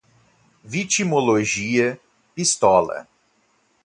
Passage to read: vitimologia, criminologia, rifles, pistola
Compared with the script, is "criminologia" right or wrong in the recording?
wrong